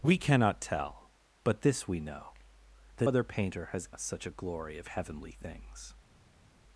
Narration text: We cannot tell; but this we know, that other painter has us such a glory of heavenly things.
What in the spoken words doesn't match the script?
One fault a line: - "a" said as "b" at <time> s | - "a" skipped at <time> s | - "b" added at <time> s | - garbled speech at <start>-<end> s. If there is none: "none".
none